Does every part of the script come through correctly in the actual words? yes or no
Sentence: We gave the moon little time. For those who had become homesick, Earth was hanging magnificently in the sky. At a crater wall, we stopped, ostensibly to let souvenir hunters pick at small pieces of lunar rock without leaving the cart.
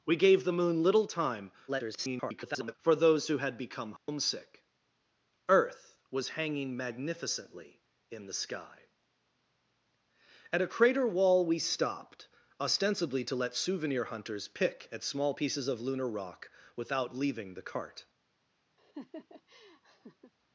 no